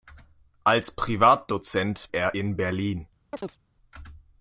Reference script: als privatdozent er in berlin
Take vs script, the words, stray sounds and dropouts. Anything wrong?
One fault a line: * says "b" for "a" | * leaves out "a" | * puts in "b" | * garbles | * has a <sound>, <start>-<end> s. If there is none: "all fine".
* has a chirp, 3.3-3.6 s